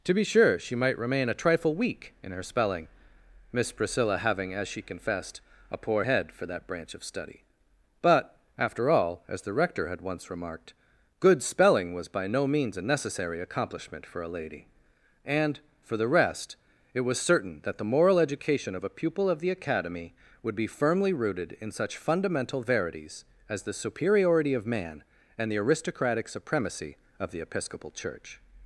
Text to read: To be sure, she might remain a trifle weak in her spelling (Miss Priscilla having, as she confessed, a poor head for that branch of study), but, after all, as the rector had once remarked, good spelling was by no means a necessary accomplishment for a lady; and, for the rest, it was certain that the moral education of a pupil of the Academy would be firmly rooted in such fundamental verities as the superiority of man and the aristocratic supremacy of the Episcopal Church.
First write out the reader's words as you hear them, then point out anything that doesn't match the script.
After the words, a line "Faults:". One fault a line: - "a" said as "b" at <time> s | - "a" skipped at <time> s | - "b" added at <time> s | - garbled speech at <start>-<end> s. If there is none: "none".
To be sure, she might remain a trifle weak in her spelling (Miss Priscilla having, as she confessed, a poor head for that branch of study), but, after all, as the rector had once remarked, good spelling was by no means a necessary accomplishment for a lady; and, for the rest, it was certain that the moral education of a pupil of the Academy would be firmly rooted in such fundamental verities as the superiority of man and the aristocratic supremacy of the Episcopal Church.
Faults:
none